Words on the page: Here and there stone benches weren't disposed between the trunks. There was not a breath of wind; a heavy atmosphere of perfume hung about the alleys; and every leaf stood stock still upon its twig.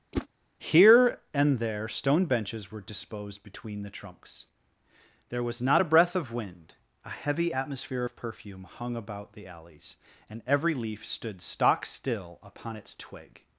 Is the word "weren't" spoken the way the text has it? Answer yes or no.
no